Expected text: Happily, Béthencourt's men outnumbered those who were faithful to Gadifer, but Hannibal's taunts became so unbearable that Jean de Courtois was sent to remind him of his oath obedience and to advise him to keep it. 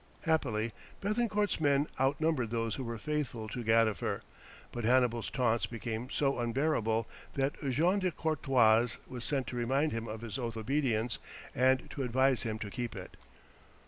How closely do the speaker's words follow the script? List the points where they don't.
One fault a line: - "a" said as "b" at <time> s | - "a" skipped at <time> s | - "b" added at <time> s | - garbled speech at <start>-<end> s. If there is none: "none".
none